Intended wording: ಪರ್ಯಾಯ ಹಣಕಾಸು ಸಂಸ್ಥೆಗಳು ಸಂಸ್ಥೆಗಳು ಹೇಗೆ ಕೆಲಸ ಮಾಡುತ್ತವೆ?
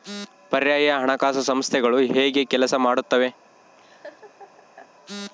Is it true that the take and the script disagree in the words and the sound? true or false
true